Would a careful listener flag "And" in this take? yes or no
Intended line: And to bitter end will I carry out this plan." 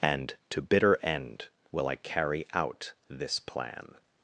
no